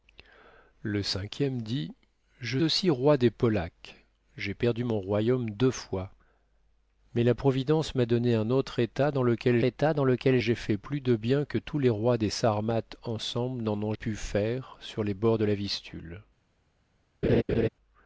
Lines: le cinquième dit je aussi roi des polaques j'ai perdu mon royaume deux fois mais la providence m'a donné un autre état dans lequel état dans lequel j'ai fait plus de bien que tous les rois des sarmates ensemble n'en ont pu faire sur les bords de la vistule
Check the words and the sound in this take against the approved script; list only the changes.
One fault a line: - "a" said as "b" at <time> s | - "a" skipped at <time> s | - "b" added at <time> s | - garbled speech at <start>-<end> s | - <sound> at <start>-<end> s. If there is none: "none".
- laugh at 17.2-17.7 s